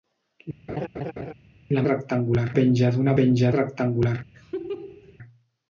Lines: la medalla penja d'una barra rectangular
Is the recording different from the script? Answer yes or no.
yes